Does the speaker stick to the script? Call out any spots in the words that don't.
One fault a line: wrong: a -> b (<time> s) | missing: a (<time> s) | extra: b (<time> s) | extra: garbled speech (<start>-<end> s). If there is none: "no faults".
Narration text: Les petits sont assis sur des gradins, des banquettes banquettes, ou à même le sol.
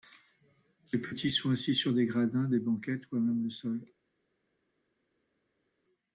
missing: banquettes (3.1 s)